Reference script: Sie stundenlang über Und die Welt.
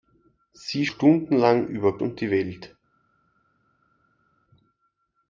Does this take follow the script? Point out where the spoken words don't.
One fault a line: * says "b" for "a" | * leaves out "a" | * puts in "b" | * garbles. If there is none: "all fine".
all fine